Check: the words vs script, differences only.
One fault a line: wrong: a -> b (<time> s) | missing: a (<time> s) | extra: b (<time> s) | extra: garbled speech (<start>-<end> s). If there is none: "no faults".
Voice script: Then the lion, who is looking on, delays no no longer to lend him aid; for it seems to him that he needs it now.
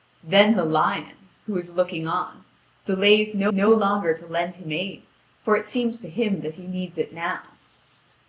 no faults